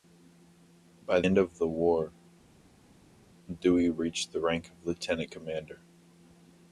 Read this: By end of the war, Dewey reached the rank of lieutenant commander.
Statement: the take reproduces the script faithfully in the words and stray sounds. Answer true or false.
true